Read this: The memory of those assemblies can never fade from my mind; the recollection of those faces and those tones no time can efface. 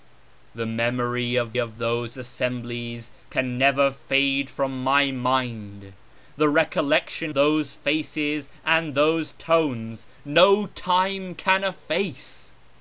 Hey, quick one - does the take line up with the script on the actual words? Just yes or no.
no